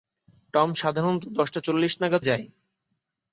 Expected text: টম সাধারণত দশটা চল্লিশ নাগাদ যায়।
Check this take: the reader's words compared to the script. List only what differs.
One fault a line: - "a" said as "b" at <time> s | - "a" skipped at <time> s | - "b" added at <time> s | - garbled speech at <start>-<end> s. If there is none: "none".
none